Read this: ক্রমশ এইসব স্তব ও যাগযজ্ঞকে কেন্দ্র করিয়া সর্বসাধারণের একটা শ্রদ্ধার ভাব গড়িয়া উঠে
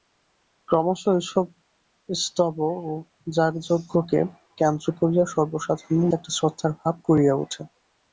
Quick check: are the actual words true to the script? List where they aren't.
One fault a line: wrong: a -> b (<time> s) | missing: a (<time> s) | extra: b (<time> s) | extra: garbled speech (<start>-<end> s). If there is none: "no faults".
no faults